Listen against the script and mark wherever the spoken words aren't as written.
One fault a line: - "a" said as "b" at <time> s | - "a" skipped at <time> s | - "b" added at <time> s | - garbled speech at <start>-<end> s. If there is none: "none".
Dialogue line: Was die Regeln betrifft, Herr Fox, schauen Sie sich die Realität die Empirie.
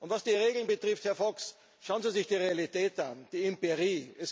- "an" added at 3.0 s